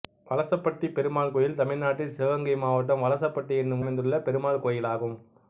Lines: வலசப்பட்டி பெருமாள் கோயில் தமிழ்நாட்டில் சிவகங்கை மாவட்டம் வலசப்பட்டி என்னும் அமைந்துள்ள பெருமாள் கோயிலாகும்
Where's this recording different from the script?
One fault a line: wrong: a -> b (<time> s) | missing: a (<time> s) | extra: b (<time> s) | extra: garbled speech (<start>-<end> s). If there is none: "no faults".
no faults